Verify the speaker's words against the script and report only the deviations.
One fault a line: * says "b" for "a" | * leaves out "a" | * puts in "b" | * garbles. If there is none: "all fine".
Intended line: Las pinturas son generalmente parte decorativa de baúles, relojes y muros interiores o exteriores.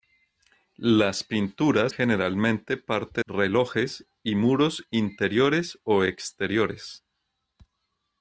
* leaves out "son"
* leaves out "decorativa de baúles"